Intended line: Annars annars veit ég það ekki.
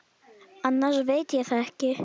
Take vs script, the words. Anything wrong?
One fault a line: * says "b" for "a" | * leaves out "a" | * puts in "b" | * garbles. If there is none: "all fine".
* leaves out "annars"